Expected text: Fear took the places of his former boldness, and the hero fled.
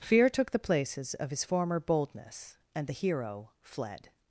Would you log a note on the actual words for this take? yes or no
no